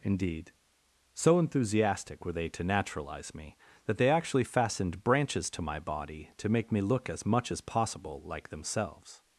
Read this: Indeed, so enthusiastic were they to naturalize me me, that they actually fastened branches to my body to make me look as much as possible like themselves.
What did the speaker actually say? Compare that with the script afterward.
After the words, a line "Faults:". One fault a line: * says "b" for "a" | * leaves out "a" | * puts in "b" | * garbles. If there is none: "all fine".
Indeed, so enthusiastic were they to naturalize me, that they actually fastened branches to my body to make me look as much as possible like themselves.
Faults:
* leaves out "me"